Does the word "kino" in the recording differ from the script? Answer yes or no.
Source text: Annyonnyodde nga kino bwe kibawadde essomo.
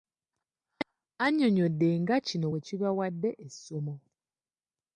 no